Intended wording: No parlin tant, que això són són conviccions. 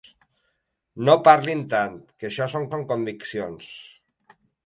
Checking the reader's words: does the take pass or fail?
pass